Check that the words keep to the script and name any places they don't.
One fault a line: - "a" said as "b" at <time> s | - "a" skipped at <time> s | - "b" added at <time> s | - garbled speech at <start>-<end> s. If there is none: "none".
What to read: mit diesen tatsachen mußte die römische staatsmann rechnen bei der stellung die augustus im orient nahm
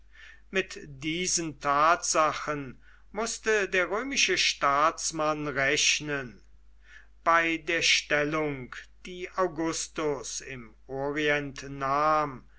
- "die" said as "der" at 3.7 s